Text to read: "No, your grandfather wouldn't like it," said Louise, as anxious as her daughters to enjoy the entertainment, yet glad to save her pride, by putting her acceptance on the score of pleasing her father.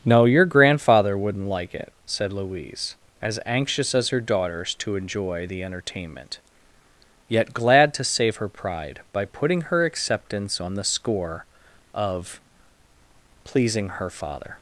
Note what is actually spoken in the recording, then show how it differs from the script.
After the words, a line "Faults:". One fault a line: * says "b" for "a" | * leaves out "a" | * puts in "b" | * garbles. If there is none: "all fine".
"No, your grandfather wouldn't like it," said Louise, as anxious as her daughters to enjoy the entertainment, yet glad to save her pride, by putting her acceptance on the score of pleasing her father.
Faults:
all fine